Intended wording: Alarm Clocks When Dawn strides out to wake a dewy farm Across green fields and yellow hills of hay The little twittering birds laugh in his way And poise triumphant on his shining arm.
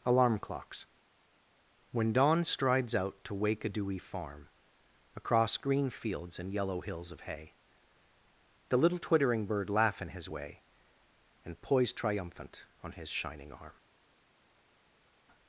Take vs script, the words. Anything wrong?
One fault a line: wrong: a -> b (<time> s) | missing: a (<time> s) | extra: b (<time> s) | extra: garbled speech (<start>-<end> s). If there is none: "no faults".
wrong: birds -> bird (9.5 s)